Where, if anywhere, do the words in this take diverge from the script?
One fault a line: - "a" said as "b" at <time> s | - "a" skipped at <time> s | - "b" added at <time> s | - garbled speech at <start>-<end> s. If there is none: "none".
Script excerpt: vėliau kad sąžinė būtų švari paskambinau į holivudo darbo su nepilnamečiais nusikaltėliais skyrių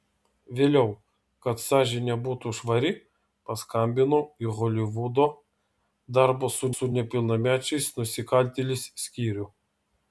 - "su" added at 6.8 s